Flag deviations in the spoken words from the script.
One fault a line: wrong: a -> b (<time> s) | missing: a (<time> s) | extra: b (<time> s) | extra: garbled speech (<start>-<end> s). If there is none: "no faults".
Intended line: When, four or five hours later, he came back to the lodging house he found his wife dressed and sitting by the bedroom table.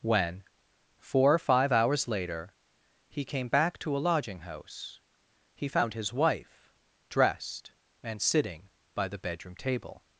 wrong: the -> a (4.0 s)